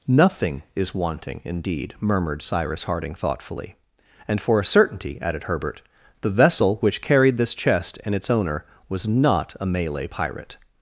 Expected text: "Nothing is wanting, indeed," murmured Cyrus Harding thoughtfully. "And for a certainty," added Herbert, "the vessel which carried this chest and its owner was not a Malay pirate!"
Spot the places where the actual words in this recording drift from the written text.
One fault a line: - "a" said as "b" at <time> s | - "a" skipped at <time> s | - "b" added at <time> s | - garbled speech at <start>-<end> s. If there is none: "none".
none